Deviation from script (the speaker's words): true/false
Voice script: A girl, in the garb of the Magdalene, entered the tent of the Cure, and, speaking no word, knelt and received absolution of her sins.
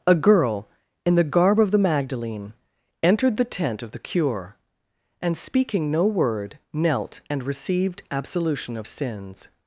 true